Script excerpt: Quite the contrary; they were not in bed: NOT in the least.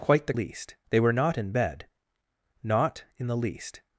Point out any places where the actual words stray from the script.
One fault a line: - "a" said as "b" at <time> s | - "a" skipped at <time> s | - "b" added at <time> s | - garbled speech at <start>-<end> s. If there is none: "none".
- "contrary" said as "least" at 0.3 s